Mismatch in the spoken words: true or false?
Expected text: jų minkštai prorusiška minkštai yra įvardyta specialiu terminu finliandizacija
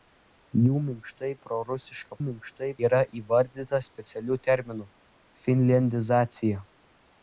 false